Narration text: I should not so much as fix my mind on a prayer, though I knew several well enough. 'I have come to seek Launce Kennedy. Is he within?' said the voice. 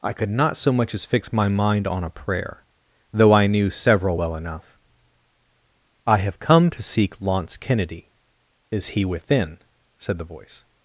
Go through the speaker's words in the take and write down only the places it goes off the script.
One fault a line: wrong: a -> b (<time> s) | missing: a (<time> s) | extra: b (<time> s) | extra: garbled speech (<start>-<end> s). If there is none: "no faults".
wrong: should -> could (0.1 s)